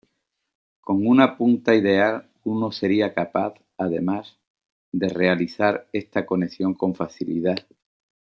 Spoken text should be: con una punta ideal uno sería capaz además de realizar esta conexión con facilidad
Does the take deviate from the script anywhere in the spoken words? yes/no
no